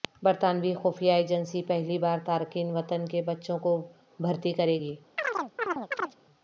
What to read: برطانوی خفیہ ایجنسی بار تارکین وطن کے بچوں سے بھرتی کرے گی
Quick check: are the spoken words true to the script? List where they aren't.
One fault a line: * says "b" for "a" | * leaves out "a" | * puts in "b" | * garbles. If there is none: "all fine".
* puts in "پہلی"
* says "کو" for "سے"